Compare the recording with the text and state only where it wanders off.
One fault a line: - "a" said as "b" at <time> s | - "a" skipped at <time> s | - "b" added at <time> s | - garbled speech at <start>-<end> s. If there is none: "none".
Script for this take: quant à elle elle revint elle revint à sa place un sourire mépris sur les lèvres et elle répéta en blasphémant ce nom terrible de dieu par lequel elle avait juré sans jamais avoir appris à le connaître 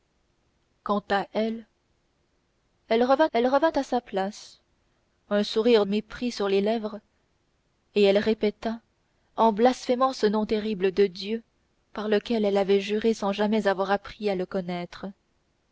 none